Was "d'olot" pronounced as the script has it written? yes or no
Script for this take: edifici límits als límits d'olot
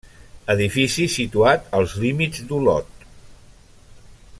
yes